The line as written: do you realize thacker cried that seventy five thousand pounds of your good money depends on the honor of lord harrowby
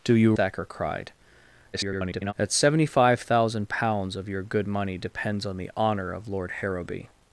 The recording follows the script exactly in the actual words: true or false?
false